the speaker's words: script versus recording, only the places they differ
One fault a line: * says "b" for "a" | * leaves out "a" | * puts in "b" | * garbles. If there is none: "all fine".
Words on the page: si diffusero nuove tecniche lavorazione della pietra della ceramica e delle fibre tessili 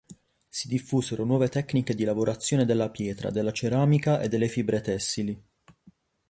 * puts in "di"